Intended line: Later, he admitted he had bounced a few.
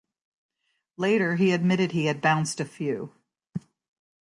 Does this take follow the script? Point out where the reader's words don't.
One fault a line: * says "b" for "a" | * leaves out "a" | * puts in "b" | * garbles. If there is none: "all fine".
all fine